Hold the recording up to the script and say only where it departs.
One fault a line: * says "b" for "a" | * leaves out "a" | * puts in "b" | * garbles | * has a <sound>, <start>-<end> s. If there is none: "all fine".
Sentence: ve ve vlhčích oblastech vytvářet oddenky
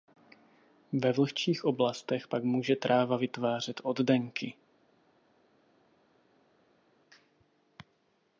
* leaves out "ve"
* puts in "pak může tráva"